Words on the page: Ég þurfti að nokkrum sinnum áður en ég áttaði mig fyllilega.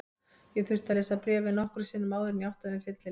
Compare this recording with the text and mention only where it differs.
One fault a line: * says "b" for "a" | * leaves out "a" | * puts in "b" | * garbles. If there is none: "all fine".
* puts in "lesa bréfið"